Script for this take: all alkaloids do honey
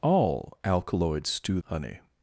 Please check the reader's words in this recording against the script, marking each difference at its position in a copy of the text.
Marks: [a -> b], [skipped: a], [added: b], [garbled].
all alkaloids do honey